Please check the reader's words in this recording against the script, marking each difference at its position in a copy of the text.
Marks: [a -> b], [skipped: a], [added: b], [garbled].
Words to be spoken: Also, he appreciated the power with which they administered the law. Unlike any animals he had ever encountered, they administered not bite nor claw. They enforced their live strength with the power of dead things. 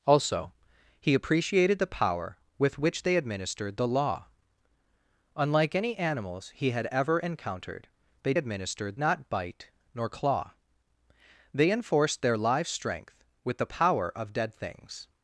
Also, he appreciated the power with which they administered the law. Unlike any animals he had ever encountered, they administered not bite nor claw. They enforced their live strength with the power of dead things.